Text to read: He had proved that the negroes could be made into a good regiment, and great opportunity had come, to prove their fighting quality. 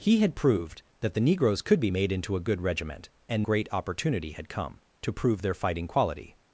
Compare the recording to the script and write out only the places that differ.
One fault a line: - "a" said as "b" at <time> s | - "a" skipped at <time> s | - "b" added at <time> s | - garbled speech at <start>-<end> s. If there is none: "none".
none